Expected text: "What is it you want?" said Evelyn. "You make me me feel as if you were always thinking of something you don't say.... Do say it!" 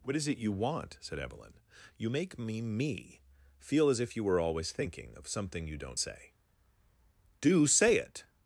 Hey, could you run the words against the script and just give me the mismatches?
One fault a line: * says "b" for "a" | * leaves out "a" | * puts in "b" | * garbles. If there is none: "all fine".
all fine